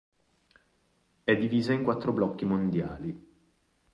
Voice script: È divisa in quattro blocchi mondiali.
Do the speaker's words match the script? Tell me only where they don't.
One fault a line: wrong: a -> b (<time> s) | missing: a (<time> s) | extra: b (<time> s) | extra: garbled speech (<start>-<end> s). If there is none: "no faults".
no faults